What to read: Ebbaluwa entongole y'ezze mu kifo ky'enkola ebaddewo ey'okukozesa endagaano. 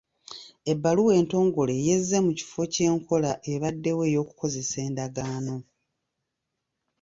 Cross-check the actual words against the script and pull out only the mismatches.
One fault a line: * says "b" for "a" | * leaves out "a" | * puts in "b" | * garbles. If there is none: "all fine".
all fine